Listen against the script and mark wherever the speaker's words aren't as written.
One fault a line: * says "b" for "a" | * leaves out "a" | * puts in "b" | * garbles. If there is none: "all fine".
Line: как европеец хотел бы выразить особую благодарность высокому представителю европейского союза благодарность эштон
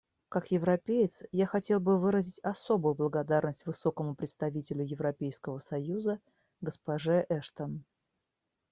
* puts in "я"
* says "госпоже" for "благодарность"